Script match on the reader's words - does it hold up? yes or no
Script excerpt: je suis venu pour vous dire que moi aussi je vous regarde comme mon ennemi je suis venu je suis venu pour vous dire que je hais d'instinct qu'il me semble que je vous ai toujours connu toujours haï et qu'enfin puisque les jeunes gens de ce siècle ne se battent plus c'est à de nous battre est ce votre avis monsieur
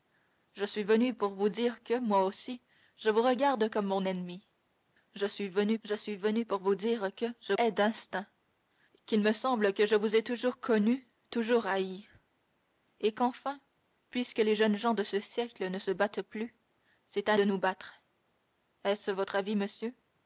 yes